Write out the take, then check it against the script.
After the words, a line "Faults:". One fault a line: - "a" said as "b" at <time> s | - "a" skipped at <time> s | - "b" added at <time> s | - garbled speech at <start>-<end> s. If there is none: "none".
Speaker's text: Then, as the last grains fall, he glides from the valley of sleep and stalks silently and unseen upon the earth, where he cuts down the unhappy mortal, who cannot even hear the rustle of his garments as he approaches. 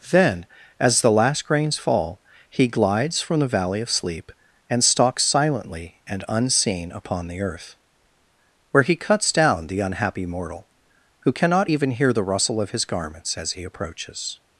Then, as the last grains fall, he glides from the valley of sleep and stalks silently and unseen upon the earth, where he cuts down the unhappy mortal, who cannot even hear the rustle of his garments as he approaches.
Faults:
none